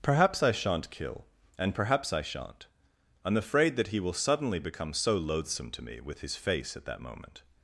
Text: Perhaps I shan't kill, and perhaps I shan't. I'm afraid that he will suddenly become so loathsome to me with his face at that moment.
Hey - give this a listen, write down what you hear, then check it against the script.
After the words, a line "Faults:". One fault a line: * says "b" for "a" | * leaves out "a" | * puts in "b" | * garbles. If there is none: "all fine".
Perhaps I shan't kill, and perhaps I shan't. I'm afraid that he will suddenly become so loathsome to me with his face at that moment.
Faults:
all fine